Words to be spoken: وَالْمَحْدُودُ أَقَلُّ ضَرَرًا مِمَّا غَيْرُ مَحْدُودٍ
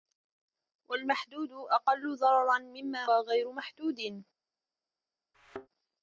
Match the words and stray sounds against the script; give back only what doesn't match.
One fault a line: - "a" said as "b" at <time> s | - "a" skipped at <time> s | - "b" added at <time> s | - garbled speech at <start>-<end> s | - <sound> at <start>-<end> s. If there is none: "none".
- thud at 5.3-5.7 s